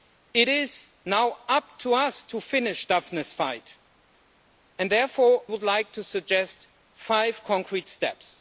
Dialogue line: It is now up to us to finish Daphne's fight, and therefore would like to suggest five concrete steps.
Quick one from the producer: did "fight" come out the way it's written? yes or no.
yes